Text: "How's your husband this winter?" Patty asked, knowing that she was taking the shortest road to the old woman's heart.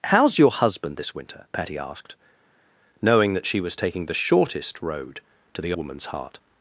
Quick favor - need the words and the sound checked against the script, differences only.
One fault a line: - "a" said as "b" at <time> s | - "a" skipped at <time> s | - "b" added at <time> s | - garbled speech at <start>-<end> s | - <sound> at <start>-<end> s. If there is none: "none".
- "old" skipped at 5.7 s